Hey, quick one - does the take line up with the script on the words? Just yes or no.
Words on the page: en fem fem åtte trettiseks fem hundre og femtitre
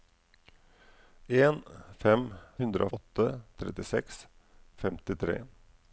no